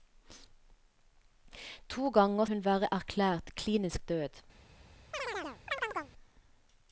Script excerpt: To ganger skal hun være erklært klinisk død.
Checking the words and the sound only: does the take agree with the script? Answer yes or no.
no